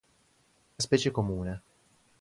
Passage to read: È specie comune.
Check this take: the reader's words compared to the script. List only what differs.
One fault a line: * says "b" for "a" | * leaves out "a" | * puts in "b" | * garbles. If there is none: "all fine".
all fine